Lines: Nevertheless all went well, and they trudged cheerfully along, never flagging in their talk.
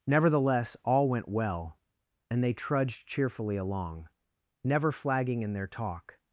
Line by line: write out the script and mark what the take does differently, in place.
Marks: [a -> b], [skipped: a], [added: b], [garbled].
Nevertheless all went well, and they trudged cheerfully along, never flagging in their talk.